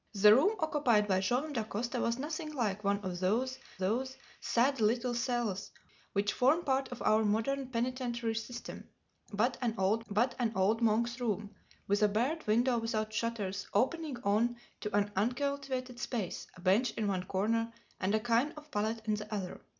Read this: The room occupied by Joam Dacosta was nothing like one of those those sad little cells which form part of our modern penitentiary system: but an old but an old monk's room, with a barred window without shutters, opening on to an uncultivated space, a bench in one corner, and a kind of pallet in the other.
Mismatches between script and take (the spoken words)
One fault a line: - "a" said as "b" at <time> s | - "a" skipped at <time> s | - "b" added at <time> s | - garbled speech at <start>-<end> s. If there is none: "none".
none